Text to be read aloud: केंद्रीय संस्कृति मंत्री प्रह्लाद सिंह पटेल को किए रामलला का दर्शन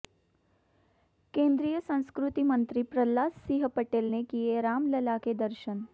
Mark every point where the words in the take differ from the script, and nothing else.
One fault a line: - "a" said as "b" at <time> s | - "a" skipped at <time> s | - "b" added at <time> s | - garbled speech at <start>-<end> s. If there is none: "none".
- "को" said as "ने" at 4.1 s
- "का" said as "के" at 5.2 s